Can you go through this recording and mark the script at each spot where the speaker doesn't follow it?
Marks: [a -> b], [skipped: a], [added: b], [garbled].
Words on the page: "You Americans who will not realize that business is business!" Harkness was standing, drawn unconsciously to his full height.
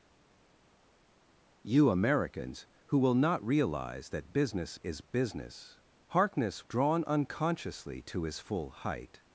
"You Americans who will not realize that business is business!" Harkness [skipped: was standing,] drawn unconsciously to his full height.